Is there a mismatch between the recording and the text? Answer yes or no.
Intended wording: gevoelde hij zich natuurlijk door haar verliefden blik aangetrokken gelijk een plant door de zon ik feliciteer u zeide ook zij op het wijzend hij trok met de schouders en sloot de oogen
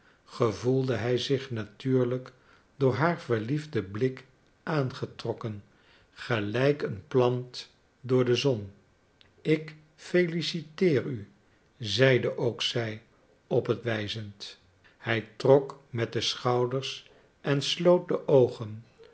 no